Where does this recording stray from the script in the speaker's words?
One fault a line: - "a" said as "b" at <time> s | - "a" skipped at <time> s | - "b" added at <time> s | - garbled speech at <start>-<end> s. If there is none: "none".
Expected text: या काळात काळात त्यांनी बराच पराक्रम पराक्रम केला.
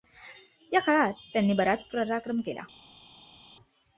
- "काळात" skipped at 1.1 s
- "पराक्रम" skipped at 2.4 s